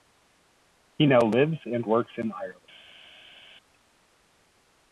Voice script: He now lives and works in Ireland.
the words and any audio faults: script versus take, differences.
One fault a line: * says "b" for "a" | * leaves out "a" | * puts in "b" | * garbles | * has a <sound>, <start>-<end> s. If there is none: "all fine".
all fine